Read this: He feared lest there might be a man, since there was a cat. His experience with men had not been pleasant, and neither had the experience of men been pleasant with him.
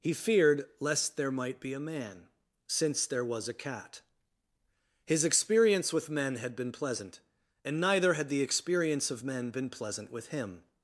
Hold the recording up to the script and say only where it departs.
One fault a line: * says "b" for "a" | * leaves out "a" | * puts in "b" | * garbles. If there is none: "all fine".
* leaves out "not"